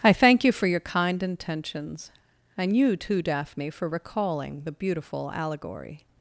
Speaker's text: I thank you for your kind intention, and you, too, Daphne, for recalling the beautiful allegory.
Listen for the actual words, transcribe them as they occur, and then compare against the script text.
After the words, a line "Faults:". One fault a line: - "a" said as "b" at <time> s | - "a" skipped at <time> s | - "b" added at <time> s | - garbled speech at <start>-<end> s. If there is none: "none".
I thank you for your kind intentions, and you, too, Daphne, for recalling the beautiful allegory.
Faults:
- "intention" said as "intentions" at 1.2 s